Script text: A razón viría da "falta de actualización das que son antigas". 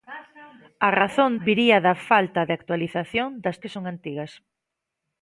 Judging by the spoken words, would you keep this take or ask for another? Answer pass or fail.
pass